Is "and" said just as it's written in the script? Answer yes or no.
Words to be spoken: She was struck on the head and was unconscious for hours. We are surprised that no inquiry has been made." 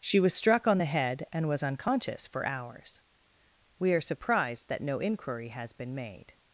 yes